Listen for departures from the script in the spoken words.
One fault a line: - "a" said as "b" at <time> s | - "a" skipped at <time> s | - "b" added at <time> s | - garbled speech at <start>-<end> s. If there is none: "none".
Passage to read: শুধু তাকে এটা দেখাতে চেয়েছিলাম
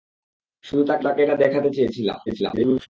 - "তাকে" added at 1.0 s
- garbled speech at 2.3-2.9 s